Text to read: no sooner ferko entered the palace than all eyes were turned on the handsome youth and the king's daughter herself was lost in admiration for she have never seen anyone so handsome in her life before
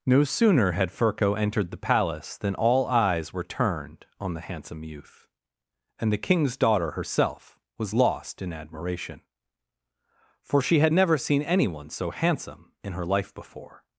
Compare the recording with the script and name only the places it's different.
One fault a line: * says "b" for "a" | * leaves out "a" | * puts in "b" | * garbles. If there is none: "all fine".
* puts in "had"
* says "had" for "have"